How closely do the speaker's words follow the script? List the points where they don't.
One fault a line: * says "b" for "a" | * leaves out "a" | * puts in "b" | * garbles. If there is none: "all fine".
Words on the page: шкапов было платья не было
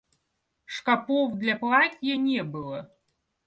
* says "для" for "было"